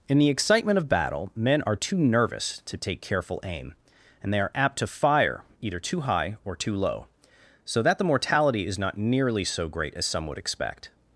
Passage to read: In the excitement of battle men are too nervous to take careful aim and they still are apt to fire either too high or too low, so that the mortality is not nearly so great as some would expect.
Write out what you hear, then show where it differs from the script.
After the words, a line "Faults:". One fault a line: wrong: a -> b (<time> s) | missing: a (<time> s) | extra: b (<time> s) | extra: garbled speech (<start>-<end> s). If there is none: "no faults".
In the excitement of battle men are too nervous to take careful aim and they are apt to fire either too high or too low, so that the mortality is not nearly so great as some would expect.
Faults:
missing: still (4.4 s)